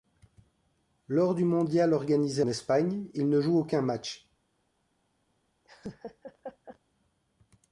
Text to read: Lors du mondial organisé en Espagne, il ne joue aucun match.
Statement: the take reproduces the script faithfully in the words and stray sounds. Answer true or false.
false